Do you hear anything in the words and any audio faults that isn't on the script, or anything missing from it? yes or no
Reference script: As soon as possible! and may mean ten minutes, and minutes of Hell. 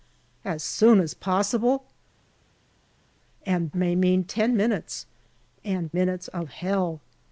no